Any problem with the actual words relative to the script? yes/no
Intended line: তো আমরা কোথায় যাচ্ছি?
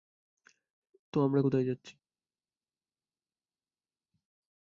no